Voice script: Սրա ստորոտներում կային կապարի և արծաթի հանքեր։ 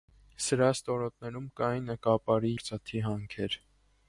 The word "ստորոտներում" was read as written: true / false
true